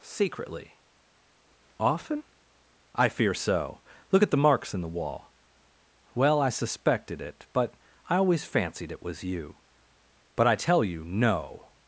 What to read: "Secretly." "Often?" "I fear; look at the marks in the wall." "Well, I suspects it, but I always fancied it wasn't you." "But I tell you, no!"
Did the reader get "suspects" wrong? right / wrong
wrong